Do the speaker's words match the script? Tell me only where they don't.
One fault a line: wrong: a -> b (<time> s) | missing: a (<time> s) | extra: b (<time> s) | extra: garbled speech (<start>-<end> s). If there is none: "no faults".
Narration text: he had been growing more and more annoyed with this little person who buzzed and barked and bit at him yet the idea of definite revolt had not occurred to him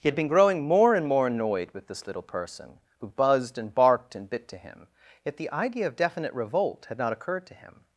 wrong: at -> to (4.5 s)